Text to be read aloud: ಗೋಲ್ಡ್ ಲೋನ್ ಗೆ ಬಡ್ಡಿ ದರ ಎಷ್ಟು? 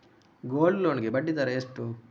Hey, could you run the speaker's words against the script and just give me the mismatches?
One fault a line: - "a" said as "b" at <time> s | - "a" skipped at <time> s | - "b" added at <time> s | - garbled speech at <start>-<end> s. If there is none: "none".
none